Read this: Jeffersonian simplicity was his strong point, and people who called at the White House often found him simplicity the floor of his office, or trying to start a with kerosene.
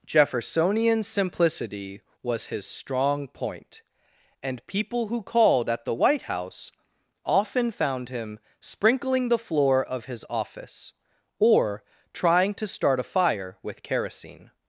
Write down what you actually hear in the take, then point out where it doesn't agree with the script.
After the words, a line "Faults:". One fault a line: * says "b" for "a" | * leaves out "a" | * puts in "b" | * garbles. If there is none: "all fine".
Jeffersonian simplicity was his strong point, and people who called at the White House often found him sprinkling the floor of his office, or trying to start a fire with kerosene.
Faults:
* says "sprinkling" for "simplicity"
* puts in "fire"